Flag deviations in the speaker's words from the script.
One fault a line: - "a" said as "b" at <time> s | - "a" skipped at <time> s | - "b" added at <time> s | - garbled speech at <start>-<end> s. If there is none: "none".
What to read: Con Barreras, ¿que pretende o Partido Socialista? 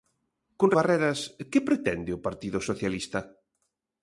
none